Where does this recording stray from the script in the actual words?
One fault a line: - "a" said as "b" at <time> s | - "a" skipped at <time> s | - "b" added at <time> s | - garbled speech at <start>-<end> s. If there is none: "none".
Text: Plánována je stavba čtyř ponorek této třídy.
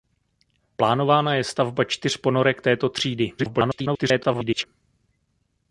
- garbled speech at 3.4-4.7 s